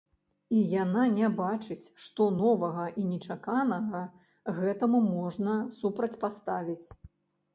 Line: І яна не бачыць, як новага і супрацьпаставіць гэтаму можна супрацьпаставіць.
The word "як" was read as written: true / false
false